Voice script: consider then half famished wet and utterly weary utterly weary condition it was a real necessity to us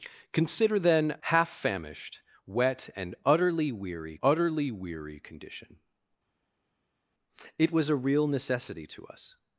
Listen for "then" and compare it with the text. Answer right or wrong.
right